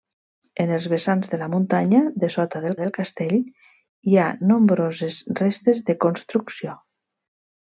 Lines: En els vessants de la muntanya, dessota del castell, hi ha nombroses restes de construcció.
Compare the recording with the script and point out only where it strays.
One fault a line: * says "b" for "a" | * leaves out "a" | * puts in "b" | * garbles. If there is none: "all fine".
* puts in "del"